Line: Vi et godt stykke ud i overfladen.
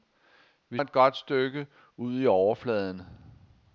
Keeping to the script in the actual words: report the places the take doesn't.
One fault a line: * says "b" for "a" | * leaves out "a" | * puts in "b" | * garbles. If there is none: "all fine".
all fine